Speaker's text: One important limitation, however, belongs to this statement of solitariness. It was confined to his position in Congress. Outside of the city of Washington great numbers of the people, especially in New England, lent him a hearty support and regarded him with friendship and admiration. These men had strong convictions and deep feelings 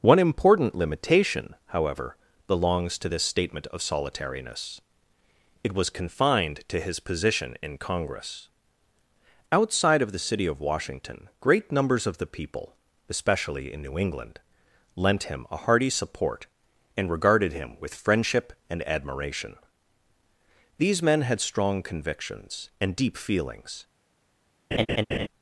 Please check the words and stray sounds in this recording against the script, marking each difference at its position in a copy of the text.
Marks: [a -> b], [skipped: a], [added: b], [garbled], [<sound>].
One important limitation, however, belongs to this statement of solitariness. It was confined to his position in Congress. Outside of the city of Washington great numbers of the people, especially in New England, lent him a hearty support and regarded him with friendship and admiration. These men had strong convictions and deep feelings [laugh]